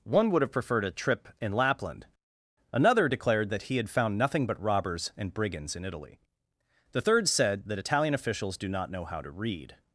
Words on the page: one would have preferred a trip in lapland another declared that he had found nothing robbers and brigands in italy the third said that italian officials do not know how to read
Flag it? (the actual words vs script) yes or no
yes